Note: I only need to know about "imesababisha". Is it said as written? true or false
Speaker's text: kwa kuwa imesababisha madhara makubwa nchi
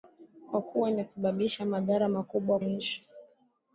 true